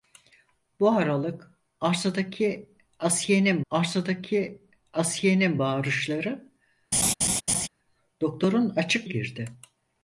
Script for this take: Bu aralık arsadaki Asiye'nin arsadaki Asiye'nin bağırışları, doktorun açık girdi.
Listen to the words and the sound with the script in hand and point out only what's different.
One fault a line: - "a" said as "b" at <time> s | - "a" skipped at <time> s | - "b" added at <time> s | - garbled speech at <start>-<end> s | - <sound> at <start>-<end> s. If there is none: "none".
- laugh at 6.9-7.7 s